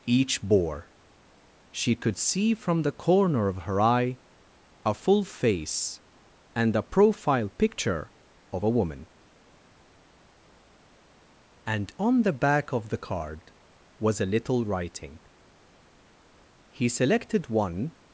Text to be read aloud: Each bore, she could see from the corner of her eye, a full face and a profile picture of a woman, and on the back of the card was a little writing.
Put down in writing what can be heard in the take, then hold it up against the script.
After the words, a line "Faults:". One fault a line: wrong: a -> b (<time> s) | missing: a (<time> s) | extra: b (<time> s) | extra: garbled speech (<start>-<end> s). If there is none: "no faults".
Each bore, she could see from the corner of her eye, a full face and a profile picture of a woman, and on the back of the card was a little writing. He selected one
Faults:
extra: He selected one (16.7 s)